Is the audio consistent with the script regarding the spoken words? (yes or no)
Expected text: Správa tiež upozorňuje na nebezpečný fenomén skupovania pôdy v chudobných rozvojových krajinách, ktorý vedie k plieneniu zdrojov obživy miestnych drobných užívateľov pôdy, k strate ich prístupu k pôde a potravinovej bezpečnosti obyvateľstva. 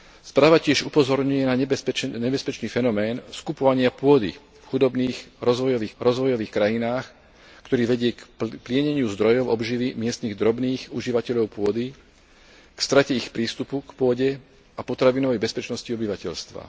no